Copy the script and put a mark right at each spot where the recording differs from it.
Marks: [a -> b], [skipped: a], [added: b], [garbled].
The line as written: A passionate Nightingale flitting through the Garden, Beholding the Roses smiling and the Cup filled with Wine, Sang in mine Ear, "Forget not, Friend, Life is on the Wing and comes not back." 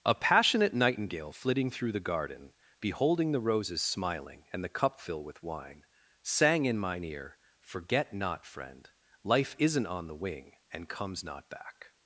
A passionate Nightingale flitting through the Garden, Beholding the Roses smiling and the Cup [filled -> fill] with Wine, Sang in mine Ear, "Forget not, Friend, Life [is -> isn't] on the Wing and comes not back."